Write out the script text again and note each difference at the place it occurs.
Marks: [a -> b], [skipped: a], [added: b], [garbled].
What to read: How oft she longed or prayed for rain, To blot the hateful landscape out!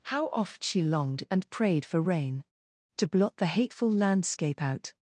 How oft she longed [or -> and] prayed for rain, To blot the hateful landscape out!